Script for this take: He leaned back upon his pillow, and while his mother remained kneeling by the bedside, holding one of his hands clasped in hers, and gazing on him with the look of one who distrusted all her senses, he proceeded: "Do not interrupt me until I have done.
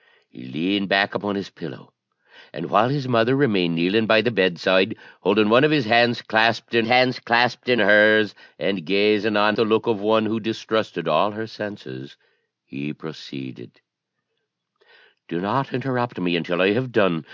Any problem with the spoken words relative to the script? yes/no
yes